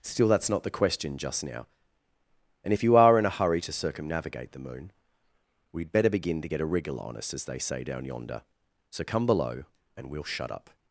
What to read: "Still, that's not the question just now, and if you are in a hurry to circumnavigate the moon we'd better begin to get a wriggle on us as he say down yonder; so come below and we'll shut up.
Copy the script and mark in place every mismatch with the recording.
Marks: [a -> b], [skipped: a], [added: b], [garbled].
"Still, that's not the question just now, and if you are in a hurry to circumnavigate the moon we'd better begin to get a wriggle on us as [he -> they] say down yonder; so come below and we'll shut up.